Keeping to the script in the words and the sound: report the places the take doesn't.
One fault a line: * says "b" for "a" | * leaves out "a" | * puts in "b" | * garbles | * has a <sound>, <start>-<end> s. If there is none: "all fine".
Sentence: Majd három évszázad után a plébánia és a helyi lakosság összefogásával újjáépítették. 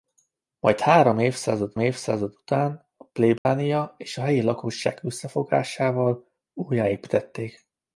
* puts in "évszázad"
* has a dropout, 3.4-3.5 s